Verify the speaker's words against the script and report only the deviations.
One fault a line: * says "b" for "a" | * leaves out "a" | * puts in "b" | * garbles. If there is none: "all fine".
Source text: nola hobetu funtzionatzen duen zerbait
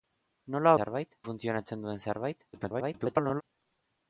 * says "zerbait" for "hobetu"
* garbles